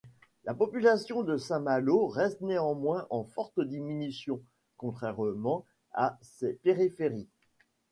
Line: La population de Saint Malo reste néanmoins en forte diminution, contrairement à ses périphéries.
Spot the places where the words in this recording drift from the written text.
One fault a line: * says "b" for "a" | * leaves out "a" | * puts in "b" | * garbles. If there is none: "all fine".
all fine